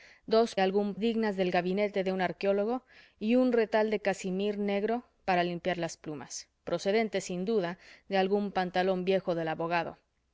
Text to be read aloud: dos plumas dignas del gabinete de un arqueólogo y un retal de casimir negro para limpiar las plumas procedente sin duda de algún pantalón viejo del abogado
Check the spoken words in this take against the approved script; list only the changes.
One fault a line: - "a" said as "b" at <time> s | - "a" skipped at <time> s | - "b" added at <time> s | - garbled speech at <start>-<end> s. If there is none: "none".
- "plumas" said as "algún" at 0.6 s